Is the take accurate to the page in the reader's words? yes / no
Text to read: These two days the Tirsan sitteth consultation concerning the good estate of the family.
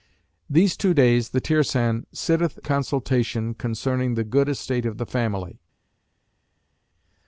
yes